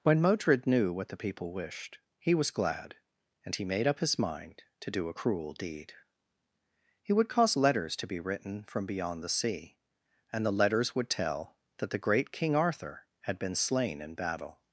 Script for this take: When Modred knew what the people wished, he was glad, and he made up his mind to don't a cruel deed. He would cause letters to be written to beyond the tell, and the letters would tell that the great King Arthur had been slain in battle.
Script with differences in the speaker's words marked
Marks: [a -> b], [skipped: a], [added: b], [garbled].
When Modred knew what the people wished, he was glad, and he made up his mind to [don't -> do] a cruel deed. He would cause letters to be written [to -> from] beyond the [tell, -> sea] and the letters would tell that the great King Arthur had been slain in battle.